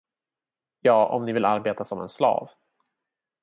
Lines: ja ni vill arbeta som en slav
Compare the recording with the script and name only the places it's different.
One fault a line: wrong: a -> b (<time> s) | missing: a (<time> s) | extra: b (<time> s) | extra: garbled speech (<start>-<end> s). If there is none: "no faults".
extra: om (1.1 s)